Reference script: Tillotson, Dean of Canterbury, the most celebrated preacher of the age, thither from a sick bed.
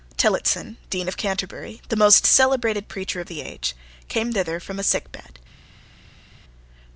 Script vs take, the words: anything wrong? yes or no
yes